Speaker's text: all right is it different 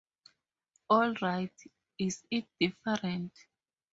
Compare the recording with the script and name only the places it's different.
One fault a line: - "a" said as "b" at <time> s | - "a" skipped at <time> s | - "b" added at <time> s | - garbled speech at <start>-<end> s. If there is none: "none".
none